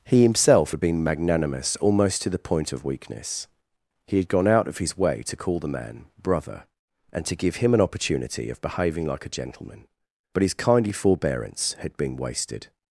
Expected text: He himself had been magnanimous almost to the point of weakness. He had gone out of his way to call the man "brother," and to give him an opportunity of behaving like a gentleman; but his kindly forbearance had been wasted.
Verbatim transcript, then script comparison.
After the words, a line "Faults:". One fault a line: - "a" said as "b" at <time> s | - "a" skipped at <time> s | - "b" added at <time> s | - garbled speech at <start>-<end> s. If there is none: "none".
He himself had been magnanimous almost to the point of weakness. He had gone out of his way to call the man "brother," and to give him an opportunity of behaving like a gentleman; but his kindly forbearance had been wasted.
Faults:
none